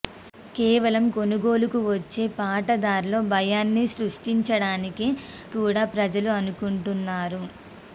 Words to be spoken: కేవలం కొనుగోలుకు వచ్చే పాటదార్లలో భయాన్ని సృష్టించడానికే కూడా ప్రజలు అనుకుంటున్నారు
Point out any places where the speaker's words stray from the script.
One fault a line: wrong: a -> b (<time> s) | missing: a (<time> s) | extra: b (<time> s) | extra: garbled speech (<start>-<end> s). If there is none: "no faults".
no faults